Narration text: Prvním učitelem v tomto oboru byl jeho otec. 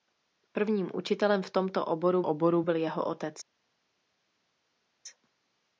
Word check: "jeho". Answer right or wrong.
right